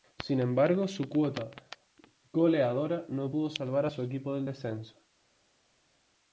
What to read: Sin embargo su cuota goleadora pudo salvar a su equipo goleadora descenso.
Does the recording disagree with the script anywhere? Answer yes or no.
yes